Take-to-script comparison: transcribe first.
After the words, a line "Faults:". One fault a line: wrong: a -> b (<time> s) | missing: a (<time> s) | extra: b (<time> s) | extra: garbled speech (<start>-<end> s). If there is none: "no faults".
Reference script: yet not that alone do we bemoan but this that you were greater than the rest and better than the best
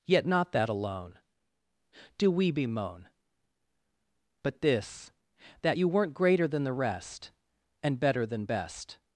yet not that alone do we bemoan but this that you weren't greater than the rest and better than best
Faults:
wrong: were -> weren't (5.9 s)
missing: the (8.4 s)